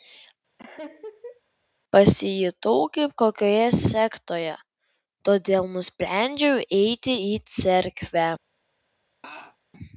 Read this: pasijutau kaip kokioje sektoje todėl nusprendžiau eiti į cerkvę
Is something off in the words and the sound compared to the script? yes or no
yes